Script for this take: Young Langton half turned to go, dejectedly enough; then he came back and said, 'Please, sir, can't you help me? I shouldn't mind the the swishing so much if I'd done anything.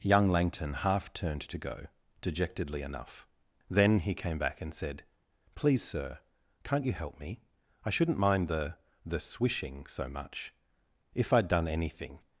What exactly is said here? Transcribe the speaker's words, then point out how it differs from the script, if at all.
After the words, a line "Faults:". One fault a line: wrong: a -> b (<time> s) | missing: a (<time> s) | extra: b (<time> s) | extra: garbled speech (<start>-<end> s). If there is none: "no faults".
Young Langton half turned to go, dejectedly enough; then he came back and said, 'Please, sir, can't you help me? I shouldn't mind the the swishing so much if I'd done anything.
Faults:
no faults